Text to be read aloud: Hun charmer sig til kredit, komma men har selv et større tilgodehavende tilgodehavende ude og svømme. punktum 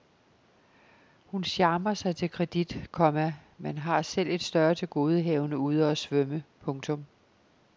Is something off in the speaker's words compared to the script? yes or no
yes